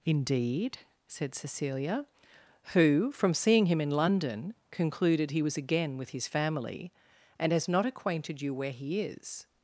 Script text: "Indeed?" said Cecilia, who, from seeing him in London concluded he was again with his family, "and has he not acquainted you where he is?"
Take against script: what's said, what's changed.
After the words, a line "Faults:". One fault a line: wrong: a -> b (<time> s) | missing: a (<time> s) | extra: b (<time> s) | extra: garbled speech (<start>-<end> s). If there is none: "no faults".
"Indeed?" said Cecilia, who, from seeing him in London concluded he was again with his family, "and has not acquainted you where he is?"
Faults:
missing: he (7.7 s)